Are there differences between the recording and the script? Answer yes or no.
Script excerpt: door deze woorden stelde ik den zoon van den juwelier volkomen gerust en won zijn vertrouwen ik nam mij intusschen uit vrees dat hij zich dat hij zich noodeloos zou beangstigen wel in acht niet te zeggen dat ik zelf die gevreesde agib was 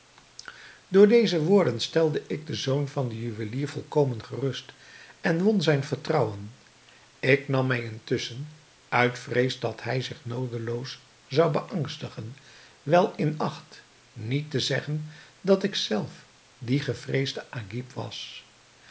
yes